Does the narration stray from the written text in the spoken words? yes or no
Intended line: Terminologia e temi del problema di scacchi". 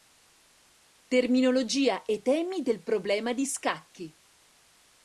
no